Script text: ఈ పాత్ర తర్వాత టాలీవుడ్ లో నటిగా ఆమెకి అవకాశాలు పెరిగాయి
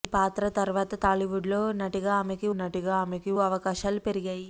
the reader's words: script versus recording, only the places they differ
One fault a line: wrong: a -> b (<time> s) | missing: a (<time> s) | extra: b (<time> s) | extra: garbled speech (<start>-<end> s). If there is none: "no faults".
extra: నటిగా ఆమెకి (2.6 s)